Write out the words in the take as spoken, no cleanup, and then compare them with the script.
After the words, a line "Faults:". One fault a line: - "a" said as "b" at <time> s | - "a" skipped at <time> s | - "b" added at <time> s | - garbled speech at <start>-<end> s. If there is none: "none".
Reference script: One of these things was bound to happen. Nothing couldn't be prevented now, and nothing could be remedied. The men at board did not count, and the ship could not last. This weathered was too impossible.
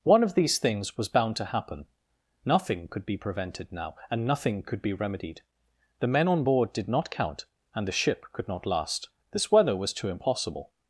One of these things was bound to happen. Nothing could be prevented now, and nothing could be remedied. The men on board did not count, and the ship could not last. This weather was too impossible.
Faults:
- "couldn't" said as "could" at 2.9 s
- "at" said as "on" at 6.3 s
- "weathered" said as "weather" at 9.5 s